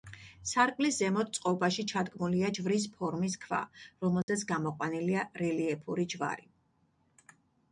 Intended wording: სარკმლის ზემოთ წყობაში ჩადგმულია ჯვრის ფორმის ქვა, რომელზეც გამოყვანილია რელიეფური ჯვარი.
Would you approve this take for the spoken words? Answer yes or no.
yes